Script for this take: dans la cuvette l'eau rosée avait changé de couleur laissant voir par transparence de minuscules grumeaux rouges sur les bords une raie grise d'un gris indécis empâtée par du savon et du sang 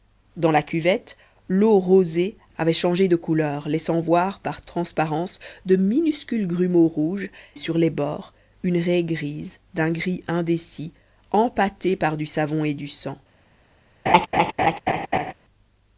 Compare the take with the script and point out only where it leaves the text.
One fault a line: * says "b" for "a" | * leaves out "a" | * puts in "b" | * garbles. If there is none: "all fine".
all fine